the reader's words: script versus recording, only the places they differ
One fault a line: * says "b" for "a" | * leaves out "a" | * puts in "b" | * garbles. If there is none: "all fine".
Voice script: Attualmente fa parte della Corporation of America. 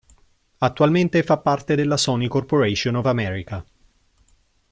* puts in "Sony"